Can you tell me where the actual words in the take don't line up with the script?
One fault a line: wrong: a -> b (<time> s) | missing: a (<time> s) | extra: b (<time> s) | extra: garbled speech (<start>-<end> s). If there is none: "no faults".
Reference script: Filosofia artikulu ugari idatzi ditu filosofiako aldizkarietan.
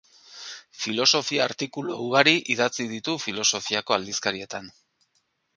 no faults